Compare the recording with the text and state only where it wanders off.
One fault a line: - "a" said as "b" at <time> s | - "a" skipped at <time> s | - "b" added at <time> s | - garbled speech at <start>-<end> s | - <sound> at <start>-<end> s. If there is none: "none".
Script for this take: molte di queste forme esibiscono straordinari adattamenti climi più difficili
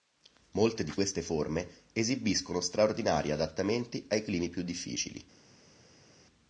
- "ai" added at 4.1 s